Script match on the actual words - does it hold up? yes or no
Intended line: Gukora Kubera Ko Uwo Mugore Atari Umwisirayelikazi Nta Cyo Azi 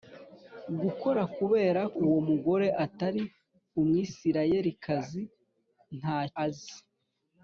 no